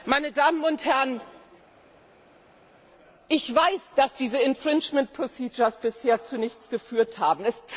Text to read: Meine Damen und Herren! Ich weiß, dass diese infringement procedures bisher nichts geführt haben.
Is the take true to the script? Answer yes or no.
no